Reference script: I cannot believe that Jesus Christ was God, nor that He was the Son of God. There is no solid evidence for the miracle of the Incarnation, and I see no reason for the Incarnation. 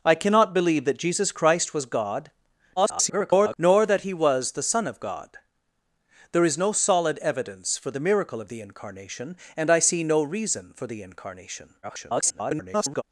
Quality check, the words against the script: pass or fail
fail